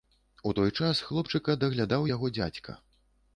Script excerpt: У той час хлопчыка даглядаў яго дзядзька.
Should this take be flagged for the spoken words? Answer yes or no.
no